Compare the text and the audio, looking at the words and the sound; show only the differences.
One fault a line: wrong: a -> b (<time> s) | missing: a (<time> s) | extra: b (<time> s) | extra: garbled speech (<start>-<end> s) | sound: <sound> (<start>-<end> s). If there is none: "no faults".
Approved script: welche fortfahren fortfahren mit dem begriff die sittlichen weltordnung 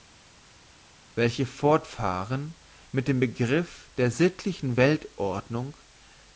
missing: fortfahren (2.5 s)
wrong: die -> der (4.0 s)